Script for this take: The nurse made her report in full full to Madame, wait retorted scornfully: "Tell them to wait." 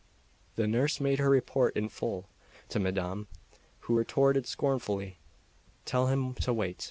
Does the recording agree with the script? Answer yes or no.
no